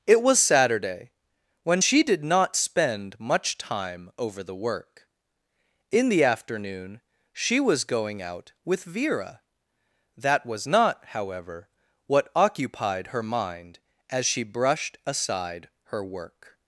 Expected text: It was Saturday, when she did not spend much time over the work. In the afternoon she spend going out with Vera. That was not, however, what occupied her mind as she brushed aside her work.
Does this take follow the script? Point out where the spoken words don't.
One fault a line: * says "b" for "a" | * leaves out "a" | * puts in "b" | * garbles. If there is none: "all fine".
* says "was" for "spend"